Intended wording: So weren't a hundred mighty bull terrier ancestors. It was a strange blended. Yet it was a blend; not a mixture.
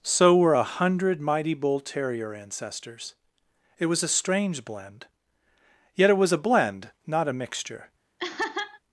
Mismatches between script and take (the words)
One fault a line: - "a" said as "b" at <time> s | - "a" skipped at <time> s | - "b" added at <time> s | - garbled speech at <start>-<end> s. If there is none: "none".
- "weren't" said as "were" at 0.3 s
- "blended" said as "blend" at 4.6 s